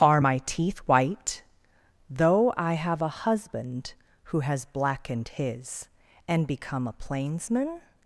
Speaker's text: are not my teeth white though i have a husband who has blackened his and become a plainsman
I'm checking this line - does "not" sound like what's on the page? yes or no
no